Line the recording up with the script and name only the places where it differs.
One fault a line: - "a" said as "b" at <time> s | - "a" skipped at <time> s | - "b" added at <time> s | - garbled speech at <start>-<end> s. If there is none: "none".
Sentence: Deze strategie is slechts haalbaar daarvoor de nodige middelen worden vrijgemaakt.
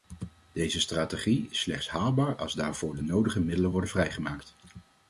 - "als" added at 2.4 s